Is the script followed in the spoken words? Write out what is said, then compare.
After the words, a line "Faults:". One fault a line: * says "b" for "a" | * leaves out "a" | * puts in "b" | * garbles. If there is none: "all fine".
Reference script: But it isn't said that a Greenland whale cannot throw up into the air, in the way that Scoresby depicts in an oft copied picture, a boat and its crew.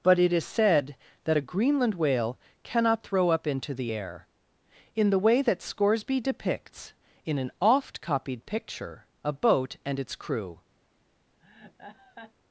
But it is said that a Greenland whale cannot throw up into the air, in the way that Scoresby depicts in an oft copied picture, a boat and its crew.
Faults:
* says "is" for "isn't"